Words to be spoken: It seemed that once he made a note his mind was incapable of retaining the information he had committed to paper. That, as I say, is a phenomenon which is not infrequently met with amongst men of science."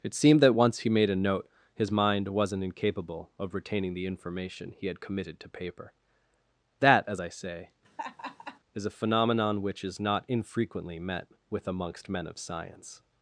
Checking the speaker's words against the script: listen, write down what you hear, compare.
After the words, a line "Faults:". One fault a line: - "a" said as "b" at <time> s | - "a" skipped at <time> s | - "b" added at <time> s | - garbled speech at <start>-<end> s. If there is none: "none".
It seemed that once he made a note his mind wasn't incapable of retaining the information he had committed to paper. That, as I say, is a phenomenon which is not infrequently met with amongst men of science."
Faults:
- "was" said as "wasn't" at 2.3 s